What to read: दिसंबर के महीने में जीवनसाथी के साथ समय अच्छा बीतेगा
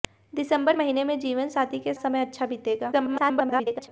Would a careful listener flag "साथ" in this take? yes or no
yes